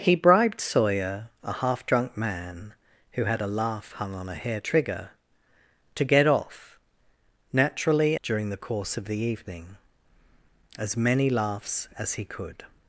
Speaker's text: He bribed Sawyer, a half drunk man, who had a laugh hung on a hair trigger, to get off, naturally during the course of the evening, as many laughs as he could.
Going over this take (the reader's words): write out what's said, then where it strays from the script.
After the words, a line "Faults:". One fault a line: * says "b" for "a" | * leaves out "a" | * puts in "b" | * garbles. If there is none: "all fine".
He bribed Sawyer, a half drunk man, who had a laugh hung on a hair trigger, to get off, naturally during the course of the evening, as many laughs as he could.
Faults:
all fine